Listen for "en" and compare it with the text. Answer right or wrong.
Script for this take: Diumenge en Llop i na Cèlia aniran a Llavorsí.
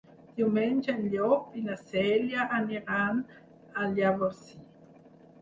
right